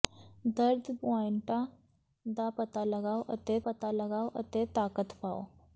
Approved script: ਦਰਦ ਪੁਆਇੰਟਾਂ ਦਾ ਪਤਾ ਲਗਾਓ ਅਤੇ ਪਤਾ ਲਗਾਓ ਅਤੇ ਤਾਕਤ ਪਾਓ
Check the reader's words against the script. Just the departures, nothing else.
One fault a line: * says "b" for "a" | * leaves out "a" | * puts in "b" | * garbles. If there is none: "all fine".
all fine